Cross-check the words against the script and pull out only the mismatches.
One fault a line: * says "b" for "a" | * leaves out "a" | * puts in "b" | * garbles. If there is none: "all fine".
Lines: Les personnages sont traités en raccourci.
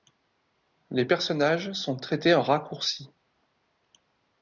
all fine